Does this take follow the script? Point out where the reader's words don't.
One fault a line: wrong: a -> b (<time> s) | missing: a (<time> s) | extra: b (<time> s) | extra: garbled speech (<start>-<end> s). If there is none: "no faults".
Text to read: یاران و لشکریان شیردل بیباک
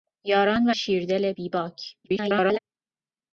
missing: لشکریان (0.7 s)
extra: garbled speech (2.0-2.6 s)